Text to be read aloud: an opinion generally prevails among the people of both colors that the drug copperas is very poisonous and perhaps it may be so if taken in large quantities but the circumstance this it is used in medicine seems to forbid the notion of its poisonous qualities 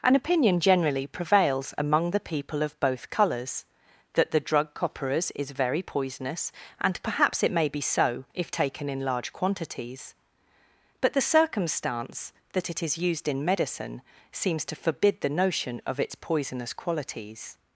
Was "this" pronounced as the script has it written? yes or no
no